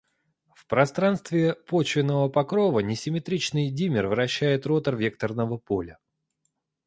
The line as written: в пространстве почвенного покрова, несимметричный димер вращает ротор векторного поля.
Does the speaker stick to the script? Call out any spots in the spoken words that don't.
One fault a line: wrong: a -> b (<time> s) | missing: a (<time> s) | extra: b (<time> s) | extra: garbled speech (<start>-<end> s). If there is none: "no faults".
no faults